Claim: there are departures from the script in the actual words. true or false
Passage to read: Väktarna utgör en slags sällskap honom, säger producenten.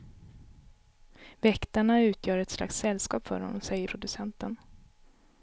true